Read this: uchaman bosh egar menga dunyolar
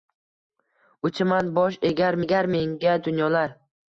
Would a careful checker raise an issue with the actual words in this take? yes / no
yes